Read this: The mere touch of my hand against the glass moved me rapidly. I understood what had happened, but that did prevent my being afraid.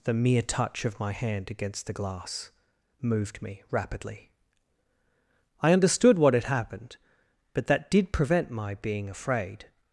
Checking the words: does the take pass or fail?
pass